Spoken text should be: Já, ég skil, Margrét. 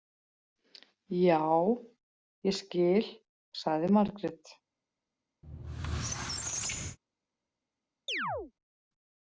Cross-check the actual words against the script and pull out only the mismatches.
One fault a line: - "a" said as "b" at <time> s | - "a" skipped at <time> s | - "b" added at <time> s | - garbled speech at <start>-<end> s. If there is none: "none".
- "sagði" added at 3.6 s